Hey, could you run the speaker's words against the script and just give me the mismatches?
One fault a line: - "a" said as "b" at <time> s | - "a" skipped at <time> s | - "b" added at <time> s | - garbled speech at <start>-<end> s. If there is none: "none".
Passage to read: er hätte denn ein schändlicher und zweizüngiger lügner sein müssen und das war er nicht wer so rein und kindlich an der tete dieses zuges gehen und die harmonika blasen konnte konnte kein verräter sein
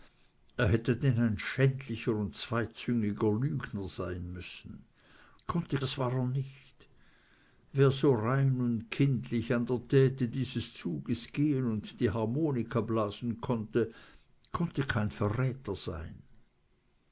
- "und" said as "konnte" at 5.5 s